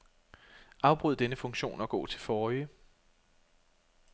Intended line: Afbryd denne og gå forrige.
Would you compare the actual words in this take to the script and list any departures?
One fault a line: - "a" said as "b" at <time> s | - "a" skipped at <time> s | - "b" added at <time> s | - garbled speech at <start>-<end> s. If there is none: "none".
- "funktion" added at 1.4 s
- "til" added at 2.0 s